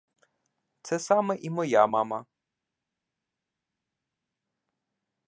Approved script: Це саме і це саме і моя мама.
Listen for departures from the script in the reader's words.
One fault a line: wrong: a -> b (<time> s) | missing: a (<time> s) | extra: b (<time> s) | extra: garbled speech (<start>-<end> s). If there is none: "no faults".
missing: це саме і (1.5 s)